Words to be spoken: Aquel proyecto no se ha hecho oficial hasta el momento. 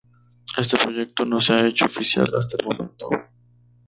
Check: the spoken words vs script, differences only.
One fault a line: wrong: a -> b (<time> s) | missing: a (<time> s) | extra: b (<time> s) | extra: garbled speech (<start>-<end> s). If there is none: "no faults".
wrong: Aquel -> Este (0.6 s)